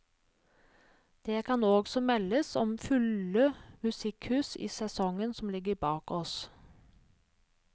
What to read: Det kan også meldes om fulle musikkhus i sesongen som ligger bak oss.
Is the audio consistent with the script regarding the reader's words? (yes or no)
yes